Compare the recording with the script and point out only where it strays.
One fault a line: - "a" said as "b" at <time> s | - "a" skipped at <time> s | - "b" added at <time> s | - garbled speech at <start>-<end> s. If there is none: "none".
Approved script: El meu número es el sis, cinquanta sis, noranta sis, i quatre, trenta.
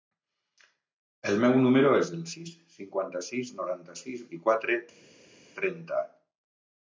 none